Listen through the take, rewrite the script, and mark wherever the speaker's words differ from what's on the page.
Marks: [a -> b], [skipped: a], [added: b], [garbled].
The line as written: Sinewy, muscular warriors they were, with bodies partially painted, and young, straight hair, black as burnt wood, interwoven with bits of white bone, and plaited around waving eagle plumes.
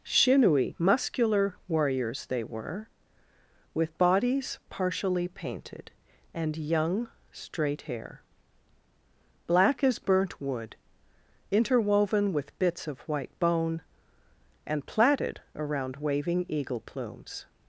Sinewy, muscular warriors they were, with bodies partially painted, and young, straight hair, black as burnt wood, interwoven with bits of white bone, and plaited around waving eagle plumes.